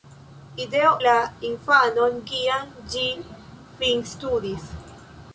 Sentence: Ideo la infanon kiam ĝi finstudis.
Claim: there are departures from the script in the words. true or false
false